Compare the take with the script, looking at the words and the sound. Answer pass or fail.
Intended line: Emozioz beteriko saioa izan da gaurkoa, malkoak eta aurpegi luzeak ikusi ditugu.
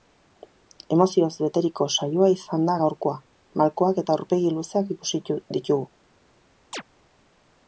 fail